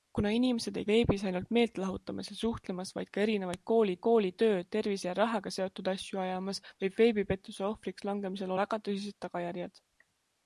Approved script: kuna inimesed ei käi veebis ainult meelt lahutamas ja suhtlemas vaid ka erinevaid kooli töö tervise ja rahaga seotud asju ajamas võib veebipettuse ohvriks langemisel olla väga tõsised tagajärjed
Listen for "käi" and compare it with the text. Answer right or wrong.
wrong